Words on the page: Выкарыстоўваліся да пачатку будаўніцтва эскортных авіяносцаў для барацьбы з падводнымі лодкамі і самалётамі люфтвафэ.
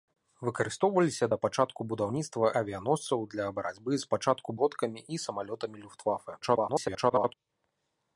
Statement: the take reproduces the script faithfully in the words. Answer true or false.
false